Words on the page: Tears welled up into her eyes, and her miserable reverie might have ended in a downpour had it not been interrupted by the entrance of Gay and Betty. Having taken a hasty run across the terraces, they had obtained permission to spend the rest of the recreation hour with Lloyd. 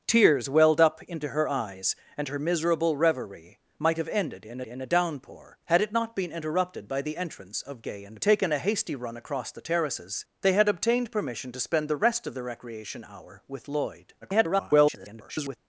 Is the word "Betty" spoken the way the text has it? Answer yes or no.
no